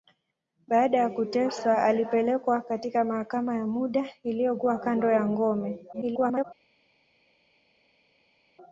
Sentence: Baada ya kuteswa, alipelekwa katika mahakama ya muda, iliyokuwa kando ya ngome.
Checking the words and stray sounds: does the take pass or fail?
fail